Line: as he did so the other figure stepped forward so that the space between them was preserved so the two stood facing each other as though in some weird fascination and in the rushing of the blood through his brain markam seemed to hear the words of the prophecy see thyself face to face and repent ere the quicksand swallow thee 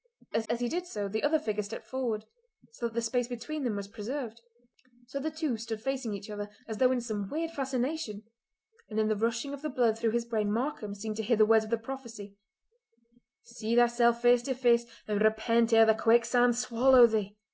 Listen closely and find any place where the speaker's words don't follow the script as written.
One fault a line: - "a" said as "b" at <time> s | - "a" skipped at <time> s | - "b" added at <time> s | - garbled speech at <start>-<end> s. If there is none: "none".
- "as" added at 0.5 s